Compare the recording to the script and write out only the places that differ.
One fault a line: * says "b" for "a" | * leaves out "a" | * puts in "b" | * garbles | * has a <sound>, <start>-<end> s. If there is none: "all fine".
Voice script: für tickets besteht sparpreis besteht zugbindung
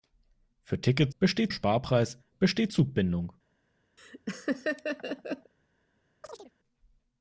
* has a laugh, 4.0-5.5 s
* has a chirp, 6.2-6.5 s